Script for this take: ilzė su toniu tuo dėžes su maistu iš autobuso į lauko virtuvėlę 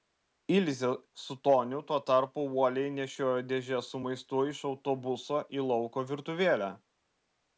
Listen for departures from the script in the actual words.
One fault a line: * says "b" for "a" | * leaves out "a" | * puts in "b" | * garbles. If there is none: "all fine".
* puts in "tarpu uoliai nešiojo"